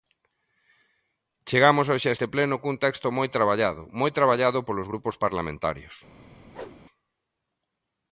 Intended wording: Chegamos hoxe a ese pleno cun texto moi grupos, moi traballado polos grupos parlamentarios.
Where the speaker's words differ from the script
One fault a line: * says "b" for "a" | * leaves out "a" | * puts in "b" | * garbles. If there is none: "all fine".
* says "este" for "ese"
* says "traballado" for "grupos"